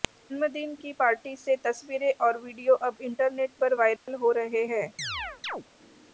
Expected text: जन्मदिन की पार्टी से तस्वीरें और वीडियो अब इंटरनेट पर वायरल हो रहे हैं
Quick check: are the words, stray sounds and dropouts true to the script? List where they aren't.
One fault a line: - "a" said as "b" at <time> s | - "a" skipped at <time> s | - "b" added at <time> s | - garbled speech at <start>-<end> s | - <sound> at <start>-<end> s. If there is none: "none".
- dropout at 4.0-4.1 s
- chirp at 5.0-5.6 s